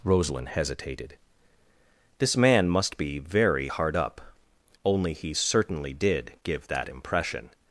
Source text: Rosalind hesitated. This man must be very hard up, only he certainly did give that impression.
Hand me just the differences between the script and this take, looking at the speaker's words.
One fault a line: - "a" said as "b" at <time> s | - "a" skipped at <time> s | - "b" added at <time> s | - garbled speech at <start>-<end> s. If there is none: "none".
none